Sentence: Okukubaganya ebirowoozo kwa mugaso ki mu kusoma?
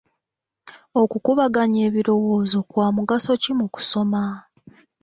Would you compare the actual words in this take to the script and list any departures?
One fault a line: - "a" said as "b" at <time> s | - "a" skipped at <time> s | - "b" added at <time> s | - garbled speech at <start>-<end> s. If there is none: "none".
none